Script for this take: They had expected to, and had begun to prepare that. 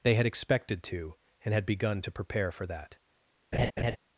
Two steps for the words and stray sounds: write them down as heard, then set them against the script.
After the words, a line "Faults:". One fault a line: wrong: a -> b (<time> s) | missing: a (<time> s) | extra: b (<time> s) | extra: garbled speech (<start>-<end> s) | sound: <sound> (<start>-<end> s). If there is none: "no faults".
They had expected to, and had begun to prepare for that.
Faults:
extra: for (2.5 s)
sound: laugh (3.5-4.0 s)